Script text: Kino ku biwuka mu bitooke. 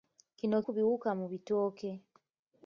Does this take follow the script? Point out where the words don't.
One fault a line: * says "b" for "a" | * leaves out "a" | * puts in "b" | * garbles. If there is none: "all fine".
all fine